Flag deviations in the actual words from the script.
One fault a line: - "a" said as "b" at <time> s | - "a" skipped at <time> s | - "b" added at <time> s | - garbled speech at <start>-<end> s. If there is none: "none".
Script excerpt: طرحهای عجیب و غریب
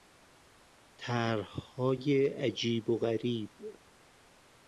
none